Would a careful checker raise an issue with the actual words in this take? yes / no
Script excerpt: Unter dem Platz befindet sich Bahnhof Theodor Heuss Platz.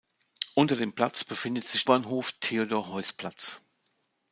no